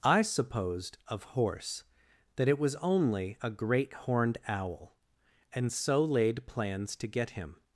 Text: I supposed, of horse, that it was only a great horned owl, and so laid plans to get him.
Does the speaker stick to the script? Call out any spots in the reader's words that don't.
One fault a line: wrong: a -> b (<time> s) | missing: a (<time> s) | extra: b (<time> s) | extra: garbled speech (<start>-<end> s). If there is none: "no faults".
no faults